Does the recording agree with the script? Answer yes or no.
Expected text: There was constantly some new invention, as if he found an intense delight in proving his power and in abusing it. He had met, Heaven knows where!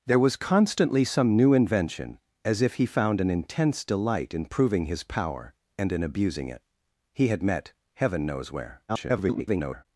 no